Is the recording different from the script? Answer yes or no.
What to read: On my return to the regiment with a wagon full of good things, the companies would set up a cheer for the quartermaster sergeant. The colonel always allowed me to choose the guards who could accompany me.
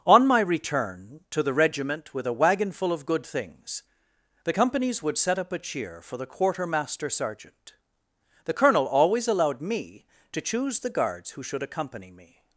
yes